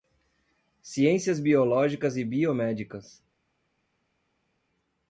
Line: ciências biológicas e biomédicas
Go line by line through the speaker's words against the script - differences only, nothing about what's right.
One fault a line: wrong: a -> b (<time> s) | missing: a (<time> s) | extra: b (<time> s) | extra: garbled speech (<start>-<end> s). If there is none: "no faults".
no faults